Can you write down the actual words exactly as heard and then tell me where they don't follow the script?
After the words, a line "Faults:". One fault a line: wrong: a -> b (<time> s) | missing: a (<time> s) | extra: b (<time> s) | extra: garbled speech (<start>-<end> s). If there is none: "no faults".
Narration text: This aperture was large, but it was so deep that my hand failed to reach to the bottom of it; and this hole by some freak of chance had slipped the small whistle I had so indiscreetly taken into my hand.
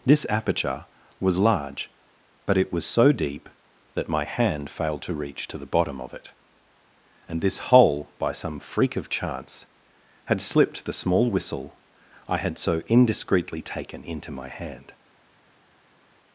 This aperture was large, but it was so deep that my hand failed to reach to the bottom of it; and this hole by some freak of chance had slipped the small whistle I had so indiscreetly taken into my hand.
Faults:
no faults